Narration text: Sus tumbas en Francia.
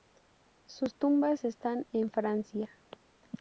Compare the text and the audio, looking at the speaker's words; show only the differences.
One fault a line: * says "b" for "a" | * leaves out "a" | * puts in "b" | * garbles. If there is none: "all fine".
* puts in "están"